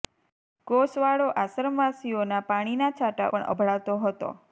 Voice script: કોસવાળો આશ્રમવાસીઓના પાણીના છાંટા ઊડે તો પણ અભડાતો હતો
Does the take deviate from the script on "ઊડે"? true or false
true